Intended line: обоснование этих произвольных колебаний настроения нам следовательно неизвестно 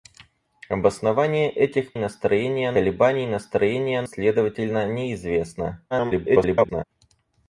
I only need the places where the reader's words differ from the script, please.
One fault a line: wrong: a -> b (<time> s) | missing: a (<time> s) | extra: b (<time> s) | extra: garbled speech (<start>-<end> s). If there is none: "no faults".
wrong: произвольных -> настроения (1.9 s)
missing: нам (4.0 s)
extra: garbled speech (5.9-6.8 s)